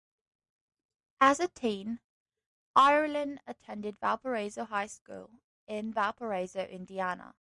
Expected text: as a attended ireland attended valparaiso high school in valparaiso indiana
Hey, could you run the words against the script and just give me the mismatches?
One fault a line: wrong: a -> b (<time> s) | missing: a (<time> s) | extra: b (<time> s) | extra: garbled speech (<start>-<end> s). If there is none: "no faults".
wrong: attended -> teen (1.5 s)